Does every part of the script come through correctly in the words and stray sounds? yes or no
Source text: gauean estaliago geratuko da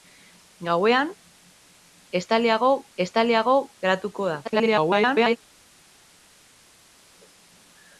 no